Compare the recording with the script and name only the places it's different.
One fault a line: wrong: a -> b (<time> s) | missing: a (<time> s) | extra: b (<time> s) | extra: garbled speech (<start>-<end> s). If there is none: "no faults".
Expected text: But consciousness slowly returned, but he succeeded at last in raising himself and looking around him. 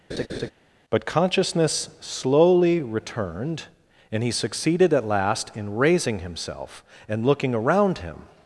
wrong: but -> and (4.1 s)